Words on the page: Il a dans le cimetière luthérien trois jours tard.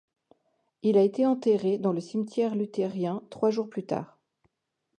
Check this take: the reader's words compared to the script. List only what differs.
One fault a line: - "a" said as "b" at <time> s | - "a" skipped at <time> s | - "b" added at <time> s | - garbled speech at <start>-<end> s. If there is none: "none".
- "été enterré" added at 1.0 s
- "plus" added at 3.7 s